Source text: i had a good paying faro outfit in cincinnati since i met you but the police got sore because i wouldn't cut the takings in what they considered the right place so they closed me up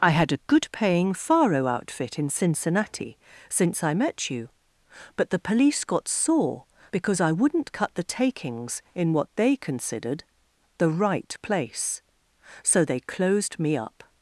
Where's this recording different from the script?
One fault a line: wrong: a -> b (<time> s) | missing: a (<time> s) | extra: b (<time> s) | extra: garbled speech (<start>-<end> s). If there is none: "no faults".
no faults